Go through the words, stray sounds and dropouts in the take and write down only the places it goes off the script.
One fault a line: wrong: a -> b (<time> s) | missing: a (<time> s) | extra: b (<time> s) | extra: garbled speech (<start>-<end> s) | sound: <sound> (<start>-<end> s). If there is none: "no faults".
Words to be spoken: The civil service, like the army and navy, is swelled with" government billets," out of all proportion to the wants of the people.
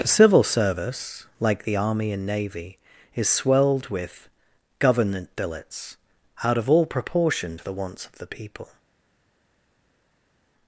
no faults